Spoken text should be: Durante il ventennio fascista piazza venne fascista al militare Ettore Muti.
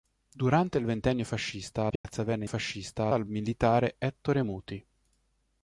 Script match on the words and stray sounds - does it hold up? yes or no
no